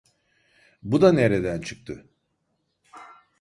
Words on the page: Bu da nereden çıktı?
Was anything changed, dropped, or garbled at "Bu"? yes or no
no